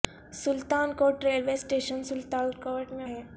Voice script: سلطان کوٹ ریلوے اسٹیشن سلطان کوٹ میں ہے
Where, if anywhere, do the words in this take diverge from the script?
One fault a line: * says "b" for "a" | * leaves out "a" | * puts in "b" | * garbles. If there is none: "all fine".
all fine